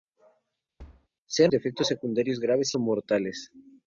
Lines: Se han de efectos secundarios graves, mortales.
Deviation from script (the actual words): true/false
false